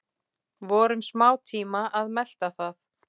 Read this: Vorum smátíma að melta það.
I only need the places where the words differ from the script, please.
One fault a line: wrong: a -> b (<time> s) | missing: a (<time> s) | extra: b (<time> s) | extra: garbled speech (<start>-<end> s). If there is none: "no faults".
no faults